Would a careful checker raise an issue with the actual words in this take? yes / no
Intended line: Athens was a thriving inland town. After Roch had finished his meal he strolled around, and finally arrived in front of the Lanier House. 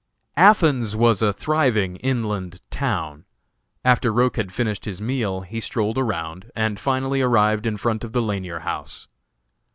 no